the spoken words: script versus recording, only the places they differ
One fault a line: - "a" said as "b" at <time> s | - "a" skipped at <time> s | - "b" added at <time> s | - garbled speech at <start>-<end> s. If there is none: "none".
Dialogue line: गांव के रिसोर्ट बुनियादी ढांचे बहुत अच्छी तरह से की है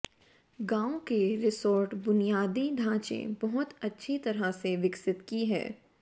- "विकसित" added at 4.8 s